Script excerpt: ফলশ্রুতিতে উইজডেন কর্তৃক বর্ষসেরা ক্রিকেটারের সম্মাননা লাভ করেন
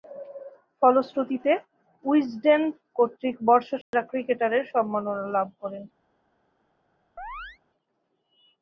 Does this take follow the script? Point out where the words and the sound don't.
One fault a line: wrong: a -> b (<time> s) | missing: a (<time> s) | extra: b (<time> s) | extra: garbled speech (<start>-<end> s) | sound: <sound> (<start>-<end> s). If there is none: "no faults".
sound: dropout (3.8-3.9 s)
sound: chirp (7.2-7.6 s)